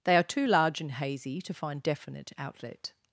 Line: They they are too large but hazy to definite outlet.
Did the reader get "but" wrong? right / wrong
wrong